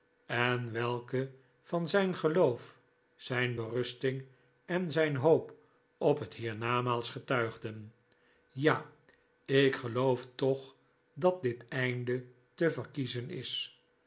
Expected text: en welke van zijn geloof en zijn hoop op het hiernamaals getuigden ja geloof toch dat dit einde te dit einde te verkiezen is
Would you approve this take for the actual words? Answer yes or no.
no